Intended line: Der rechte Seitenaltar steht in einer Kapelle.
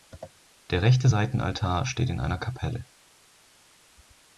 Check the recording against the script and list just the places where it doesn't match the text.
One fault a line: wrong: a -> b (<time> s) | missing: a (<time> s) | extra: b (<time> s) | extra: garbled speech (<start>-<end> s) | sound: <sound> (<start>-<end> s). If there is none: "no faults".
no faults